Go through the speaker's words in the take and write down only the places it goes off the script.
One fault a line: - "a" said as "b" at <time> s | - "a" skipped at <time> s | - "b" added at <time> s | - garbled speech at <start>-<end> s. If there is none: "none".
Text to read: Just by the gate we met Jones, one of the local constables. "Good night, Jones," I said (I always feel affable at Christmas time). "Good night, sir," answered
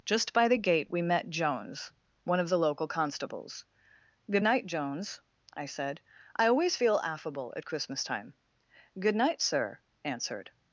none